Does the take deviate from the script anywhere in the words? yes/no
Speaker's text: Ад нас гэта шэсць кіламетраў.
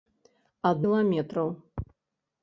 yes